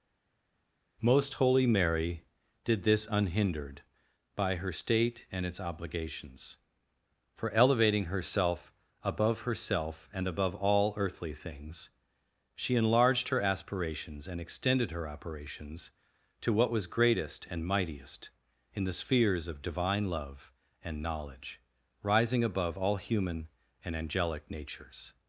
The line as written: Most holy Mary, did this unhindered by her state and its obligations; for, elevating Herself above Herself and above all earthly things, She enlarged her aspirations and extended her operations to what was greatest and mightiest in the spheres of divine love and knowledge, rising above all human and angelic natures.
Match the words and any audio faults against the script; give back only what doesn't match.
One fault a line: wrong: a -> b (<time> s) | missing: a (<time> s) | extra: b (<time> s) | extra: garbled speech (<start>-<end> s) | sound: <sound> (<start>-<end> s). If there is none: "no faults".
no faults